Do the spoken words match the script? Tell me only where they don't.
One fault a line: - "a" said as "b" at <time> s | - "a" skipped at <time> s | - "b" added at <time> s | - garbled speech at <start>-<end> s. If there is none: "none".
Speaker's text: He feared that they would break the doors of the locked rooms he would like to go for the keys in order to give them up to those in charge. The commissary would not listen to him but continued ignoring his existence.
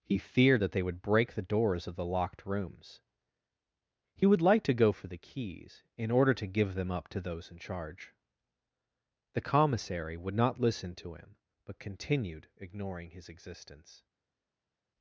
none